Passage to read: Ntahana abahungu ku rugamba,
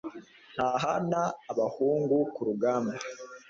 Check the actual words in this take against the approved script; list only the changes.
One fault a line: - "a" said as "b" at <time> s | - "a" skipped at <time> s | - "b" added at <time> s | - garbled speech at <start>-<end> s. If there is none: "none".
none